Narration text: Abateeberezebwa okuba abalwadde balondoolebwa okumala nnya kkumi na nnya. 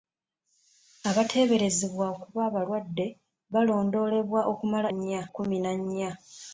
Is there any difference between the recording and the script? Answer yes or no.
no